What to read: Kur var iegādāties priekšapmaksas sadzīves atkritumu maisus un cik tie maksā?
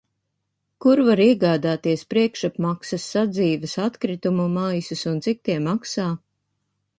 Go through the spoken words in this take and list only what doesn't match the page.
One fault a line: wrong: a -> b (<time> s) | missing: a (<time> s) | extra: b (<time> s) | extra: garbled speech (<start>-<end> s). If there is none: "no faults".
no faults